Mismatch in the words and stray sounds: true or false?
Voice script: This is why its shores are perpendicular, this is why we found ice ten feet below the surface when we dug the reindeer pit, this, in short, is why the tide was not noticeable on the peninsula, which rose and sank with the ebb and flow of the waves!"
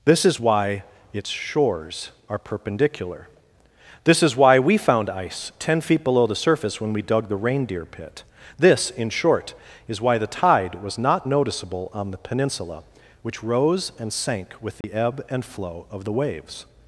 true